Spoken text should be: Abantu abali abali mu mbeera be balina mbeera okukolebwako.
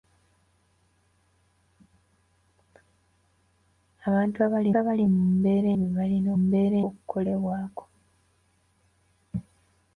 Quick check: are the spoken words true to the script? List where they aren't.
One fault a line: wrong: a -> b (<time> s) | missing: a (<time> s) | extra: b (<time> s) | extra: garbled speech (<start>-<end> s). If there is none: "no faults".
no faults